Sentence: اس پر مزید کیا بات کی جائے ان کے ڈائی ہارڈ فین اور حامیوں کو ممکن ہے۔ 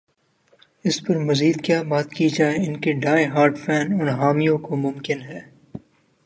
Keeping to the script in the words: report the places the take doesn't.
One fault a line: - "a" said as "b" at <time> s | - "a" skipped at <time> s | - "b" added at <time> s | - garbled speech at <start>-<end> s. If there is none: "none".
none